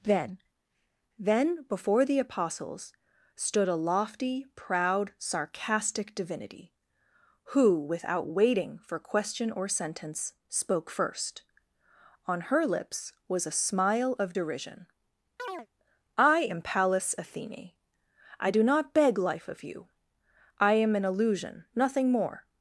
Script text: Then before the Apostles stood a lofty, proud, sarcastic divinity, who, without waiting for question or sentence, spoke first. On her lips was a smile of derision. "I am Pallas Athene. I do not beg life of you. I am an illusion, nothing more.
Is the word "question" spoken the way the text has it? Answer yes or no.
yes